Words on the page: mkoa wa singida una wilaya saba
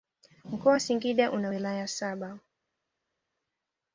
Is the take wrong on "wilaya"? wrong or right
right